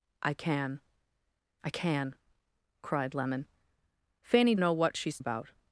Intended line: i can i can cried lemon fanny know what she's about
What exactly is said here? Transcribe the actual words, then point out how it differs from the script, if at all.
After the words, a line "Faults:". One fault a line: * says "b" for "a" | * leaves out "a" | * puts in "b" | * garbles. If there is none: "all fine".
i can i can cried lemon fanny know what she's about
Faults:
all fine